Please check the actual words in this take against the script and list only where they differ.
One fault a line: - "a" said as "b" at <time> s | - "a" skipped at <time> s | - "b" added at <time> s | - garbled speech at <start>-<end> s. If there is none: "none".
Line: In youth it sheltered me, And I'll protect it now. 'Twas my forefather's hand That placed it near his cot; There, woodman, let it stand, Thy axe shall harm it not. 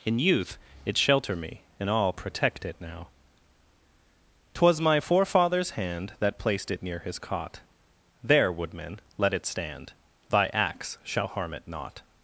- "sheltered" said as "shelter" at 1.0 s